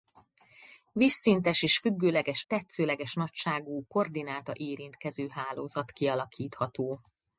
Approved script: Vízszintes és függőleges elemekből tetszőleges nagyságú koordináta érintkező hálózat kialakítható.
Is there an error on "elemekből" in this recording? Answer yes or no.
yes